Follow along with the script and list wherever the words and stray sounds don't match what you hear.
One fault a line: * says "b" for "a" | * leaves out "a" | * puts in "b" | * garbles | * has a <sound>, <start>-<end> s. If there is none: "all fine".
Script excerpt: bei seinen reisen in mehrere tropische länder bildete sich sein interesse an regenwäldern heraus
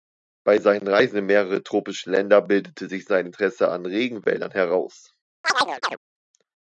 * has a chirp, 5.4-6.0 s